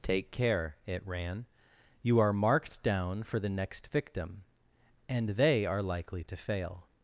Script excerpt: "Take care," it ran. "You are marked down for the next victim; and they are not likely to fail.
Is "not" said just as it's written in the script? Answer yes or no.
no